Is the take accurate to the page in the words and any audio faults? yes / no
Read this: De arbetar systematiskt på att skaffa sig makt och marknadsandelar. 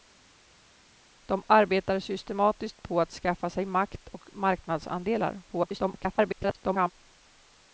no